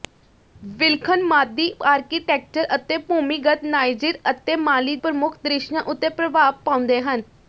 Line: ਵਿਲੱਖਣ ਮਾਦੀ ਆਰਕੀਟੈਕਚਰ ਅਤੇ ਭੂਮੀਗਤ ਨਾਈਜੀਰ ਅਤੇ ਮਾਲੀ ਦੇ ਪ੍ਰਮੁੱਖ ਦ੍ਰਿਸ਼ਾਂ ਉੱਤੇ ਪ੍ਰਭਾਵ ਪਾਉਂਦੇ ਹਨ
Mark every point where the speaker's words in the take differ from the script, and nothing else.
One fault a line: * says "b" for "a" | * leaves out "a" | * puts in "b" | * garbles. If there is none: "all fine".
* leaves out "ਦੇ"